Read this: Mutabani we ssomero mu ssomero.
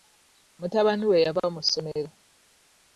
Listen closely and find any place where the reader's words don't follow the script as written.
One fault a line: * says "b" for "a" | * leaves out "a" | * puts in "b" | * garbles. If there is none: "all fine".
* says "yava" for "ssomero"